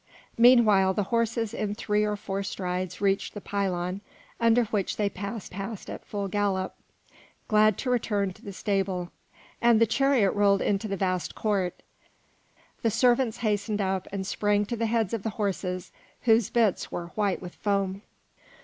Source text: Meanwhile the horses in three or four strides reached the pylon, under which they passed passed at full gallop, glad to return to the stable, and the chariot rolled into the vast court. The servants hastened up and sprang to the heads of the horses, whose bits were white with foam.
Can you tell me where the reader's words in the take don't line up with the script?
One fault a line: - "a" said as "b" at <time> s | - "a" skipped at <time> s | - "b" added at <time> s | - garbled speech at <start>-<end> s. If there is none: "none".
none